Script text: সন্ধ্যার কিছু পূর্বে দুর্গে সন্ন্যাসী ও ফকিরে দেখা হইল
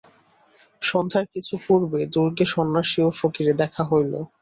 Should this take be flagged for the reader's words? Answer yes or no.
no